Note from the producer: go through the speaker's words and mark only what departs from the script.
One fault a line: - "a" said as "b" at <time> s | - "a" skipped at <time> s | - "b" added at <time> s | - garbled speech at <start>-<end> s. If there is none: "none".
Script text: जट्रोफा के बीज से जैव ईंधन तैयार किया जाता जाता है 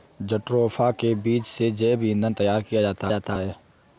none